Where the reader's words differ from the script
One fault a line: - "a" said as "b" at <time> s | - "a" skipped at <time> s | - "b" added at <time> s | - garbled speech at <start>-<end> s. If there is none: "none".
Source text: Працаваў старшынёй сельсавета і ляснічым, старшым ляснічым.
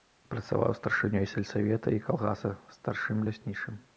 - "ляснічым" said as "калгаса" at 2.1 s